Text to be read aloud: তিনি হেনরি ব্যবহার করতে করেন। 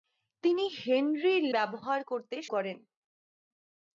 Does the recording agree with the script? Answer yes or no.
yes